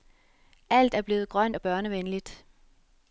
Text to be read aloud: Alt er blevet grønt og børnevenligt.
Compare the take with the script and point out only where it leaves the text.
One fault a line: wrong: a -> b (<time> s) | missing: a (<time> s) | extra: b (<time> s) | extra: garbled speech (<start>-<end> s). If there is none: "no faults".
no faults